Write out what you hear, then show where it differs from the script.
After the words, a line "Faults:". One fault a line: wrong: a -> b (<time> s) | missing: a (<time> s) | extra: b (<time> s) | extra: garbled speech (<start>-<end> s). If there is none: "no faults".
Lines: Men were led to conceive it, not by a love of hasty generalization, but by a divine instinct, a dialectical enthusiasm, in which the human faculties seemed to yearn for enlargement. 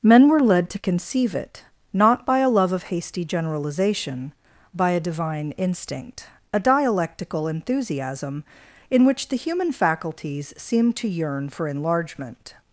Men were led to conceive it, not by a love of hasty generalization, by a divine instinct, a dialectical enthusiasm, in which the human faculties seemed to yearn for enlargement.
Faults:
missing: but (4.3 s)